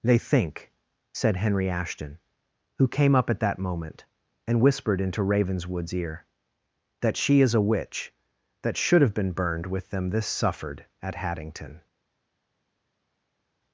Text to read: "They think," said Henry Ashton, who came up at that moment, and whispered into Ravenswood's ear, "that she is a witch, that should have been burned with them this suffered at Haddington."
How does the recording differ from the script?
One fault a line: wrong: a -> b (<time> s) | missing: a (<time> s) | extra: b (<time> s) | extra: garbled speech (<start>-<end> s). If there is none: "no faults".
no faults